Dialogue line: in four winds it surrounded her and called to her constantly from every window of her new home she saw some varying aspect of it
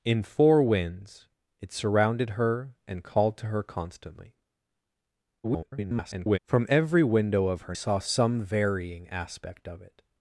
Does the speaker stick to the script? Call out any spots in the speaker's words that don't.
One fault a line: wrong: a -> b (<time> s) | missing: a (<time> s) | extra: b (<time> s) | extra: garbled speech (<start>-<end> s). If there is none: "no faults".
extra: garbled speech (5.4-6.4 s)
missing: new home she (7.7 s)